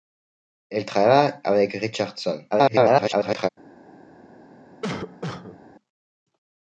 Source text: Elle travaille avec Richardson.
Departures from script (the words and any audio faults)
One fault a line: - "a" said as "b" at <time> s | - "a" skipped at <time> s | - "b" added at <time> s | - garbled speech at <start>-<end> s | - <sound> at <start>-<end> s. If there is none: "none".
- garbled speech at 2.5-3.5 s
- cough at 4.8-5.6 s